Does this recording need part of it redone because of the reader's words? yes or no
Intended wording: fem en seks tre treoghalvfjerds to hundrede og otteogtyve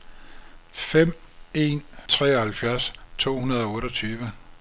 yes